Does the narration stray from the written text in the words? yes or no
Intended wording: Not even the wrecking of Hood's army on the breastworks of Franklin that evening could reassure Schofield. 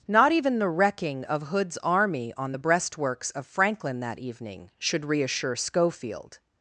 yes